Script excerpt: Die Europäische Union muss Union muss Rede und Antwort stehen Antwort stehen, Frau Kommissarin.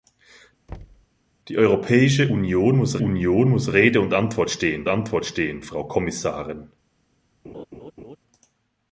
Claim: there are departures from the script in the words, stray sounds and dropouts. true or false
true